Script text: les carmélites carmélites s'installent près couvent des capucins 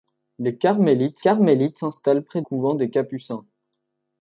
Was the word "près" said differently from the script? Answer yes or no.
no